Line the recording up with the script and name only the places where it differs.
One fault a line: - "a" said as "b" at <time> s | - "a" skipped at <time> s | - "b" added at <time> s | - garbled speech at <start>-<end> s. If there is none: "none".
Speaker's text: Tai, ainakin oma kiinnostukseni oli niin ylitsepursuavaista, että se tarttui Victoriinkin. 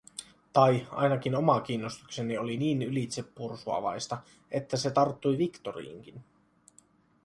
none